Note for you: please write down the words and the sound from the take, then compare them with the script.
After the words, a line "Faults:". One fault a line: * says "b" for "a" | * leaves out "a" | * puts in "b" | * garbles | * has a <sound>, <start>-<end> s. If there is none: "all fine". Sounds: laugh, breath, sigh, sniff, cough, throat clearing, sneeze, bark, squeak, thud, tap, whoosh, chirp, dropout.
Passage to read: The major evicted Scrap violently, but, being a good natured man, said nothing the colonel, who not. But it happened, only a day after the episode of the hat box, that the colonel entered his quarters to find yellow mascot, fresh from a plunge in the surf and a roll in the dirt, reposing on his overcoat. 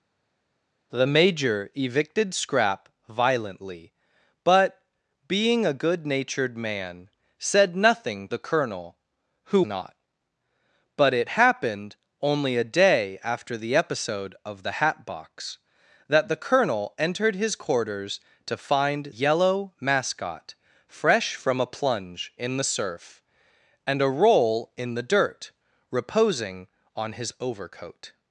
The major evicted Scrap violently, but, being a good natured man, said nothing the colonel, who not. But it happened, only a day after the episode of the hat box, that the colonel entered his quarters to find yellow mascot, fresh from a plunge in the surf and a roll in the dirt, reposing on his overcoat.
Faults:
all fine